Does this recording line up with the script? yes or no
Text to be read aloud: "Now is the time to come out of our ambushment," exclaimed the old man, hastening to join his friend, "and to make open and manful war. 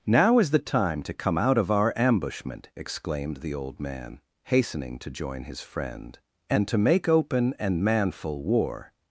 yes